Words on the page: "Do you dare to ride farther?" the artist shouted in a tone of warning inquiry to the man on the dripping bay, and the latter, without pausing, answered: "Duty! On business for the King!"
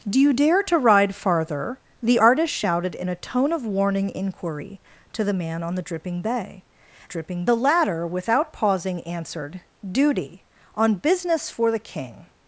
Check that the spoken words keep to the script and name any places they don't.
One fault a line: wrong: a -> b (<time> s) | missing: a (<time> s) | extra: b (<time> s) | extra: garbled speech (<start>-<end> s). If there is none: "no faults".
wrong: and -> dripping (7.1 s)